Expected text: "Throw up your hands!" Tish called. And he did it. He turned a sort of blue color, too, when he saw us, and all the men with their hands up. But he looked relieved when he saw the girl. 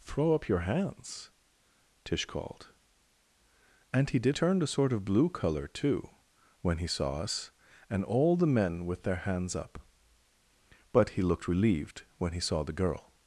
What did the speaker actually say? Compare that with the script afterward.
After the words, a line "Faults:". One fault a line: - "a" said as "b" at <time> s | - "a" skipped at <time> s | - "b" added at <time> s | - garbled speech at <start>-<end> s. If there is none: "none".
"Throw up your hands!" Tish called. And he did turned a sort of blue color, too, when he saw us, and all the men with their hands up. But he looked relieved when he saw the girl.
Faults:
- "it He" skipped at 4.3 s